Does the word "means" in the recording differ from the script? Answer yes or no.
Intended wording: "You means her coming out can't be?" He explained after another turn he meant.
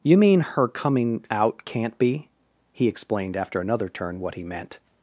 yes